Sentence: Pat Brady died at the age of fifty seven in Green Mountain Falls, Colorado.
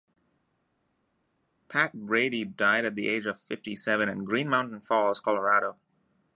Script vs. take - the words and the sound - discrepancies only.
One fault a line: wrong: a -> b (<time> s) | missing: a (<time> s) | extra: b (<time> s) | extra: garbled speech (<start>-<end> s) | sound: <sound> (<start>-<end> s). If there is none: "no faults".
no faults